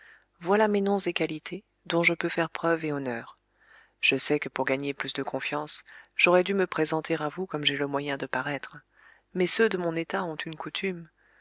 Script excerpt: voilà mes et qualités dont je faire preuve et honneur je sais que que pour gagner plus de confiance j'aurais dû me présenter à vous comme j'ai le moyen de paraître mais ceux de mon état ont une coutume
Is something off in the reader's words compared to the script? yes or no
yes